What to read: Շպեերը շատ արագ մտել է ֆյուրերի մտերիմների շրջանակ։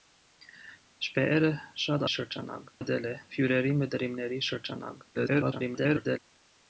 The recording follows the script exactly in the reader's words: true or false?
false